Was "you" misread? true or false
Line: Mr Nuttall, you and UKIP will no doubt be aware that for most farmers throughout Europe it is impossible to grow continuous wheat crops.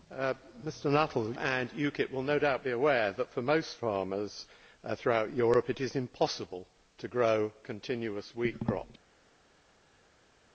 true